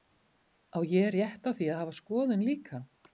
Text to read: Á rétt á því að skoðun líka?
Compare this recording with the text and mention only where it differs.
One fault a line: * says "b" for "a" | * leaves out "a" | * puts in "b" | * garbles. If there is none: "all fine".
* puts in "ég"
* puts in "hafa"